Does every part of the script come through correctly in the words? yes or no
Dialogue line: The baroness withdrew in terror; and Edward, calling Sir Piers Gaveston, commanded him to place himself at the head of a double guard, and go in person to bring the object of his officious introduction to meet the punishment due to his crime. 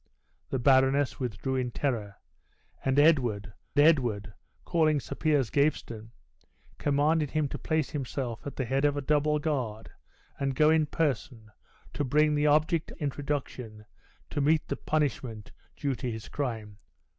no